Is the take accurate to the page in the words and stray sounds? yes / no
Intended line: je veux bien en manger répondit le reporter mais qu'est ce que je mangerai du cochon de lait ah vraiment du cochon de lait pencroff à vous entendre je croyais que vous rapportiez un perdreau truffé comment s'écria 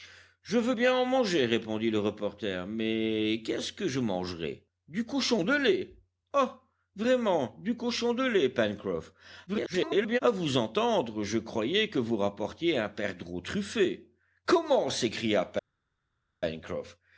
no